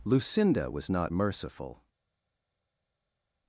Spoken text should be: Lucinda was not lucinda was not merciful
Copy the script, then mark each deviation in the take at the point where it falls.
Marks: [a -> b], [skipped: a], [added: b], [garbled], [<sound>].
Lucinda was not [skipped: lucinda was not] merciful